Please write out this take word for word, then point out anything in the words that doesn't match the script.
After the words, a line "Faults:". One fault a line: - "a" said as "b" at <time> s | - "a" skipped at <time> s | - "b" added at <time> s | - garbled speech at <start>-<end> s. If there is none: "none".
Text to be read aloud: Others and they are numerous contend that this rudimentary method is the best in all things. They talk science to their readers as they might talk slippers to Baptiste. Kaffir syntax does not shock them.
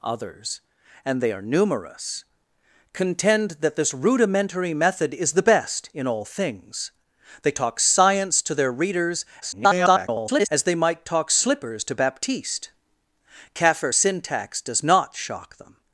Others and they are numerous contend that this rudimentary method is the best in all things. They talk science to their readers [garbled] as they might talk slippers to Baptiste. Kaffir syntax does not shock them.
Faults:
- garbled speech at 9.4-10.5 s